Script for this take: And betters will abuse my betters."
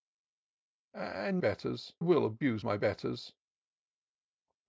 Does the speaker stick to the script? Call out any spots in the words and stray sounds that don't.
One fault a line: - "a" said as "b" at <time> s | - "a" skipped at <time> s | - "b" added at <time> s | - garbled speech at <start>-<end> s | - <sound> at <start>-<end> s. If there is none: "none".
none